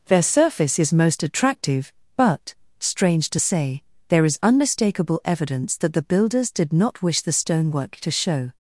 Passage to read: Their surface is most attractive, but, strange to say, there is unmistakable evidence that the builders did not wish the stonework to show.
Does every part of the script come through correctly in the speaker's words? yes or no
yes